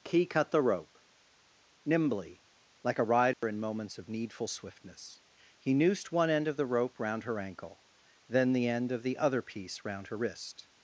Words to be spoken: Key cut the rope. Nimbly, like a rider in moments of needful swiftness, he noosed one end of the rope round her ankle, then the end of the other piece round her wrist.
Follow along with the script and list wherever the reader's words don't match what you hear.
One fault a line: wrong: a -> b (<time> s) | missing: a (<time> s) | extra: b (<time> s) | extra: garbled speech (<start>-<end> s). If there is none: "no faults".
no faults